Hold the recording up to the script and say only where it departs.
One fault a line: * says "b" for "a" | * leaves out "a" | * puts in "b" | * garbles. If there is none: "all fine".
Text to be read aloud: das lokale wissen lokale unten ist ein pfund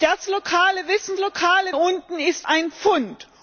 all fine